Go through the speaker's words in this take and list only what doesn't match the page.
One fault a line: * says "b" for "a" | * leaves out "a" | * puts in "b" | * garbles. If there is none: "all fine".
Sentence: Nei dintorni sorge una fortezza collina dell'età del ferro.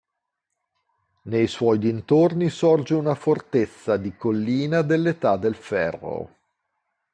* puts in "suoi"
* puts in "di"